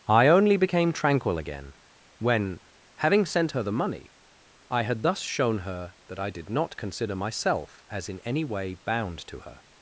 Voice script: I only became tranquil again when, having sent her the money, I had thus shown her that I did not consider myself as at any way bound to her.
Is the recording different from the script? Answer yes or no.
yes